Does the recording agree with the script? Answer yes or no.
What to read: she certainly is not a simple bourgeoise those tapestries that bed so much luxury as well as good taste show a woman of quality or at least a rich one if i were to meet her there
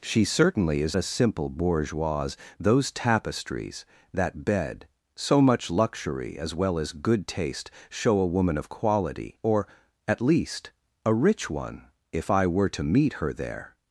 no